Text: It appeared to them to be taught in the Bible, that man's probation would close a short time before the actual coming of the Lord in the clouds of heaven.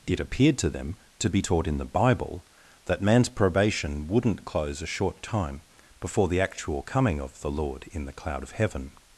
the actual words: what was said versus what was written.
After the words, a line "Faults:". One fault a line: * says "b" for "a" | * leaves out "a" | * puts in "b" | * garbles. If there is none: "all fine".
It appeared to them to be taught in the Bible, that man's probation wouldn't close a short time before the actual coming of the Lord in the cloud of heaven.
Faults:
* says "wouldn't" for "would"
* says "cloud" for "clouds"